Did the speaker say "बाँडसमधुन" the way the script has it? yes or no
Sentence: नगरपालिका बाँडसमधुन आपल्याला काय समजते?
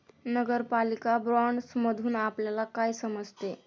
yes